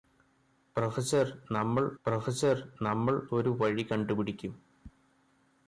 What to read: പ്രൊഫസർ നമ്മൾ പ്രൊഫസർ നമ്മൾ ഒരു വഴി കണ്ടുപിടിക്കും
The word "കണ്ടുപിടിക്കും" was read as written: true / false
true